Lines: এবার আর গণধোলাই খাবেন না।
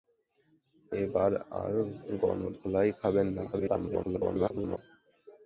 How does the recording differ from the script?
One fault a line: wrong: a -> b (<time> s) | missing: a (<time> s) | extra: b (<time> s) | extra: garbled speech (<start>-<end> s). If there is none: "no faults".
extra: garbled speech (3.5-4.8 s)